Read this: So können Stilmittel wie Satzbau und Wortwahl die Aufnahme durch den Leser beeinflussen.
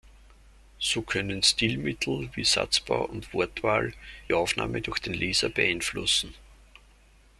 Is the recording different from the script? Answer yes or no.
yes